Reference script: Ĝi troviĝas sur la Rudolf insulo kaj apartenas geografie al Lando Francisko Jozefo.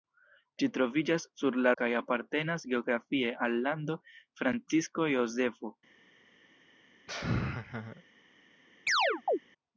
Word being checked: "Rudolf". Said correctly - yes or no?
no